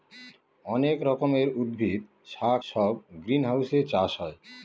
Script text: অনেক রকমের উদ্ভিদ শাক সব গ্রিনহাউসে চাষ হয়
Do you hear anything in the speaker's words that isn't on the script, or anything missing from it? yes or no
no